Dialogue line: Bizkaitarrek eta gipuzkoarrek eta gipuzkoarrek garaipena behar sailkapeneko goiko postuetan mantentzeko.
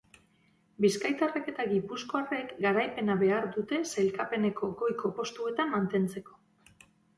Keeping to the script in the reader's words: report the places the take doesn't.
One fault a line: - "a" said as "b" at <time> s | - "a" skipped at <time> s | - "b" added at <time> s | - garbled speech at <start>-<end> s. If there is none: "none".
- "eta gipuzkoarrek" skipped at 2.5 s
- "dute" added at 3.6 s